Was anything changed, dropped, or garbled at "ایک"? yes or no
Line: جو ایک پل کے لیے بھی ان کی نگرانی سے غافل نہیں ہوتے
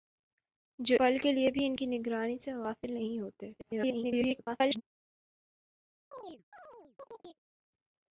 yes